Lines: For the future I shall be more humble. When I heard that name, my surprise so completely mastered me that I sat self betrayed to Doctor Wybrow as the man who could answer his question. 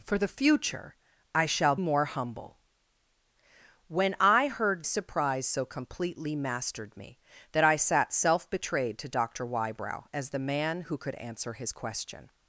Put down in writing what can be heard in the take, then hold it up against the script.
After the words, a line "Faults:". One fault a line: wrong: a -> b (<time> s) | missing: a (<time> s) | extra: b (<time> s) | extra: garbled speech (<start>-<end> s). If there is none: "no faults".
For the future I shall more humble. When I heard surprise so completely mastered me that I sat self betrayed to Doctor Wybrow as the man who could answer his question.
Faults:
missing: be (1.8 s)
missing: that name my (4.8 s)